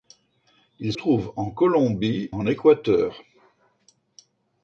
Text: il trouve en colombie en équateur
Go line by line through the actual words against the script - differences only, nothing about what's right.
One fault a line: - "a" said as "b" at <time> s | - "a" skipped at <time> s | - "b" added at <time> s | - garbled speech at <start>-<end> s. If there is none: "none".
none